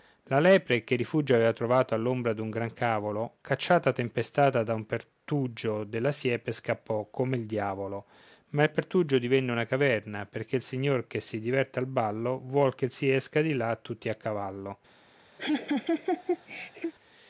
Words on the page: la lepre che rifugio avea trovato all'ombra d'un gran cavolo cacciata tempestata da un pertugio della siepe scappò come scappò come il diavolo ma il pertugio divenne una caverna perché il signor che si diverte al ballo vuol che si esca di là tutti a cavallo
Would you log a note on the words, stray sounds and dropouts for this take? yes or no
yes